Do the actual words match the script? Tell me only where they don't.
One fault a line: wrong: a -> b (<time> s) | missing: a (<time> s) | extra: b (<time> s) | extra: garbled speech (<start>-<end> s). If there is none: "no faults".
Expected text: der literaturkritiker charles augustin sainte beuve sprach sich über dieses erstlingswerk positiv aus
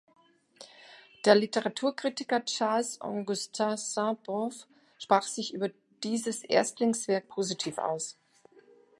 no faults